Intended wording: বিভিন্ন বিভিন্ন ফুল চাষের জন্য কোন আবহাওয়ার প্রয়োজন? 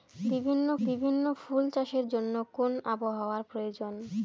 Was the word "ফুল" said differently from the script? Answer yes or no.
no